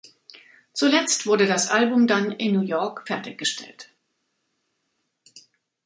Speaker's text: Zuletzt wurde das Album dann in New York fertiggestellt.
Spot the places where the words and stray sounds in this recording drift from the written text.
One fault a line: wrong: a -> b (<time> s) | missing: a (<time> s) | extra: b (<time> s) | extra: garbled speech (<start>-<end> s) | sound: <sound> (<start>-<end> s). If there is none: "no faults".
no faults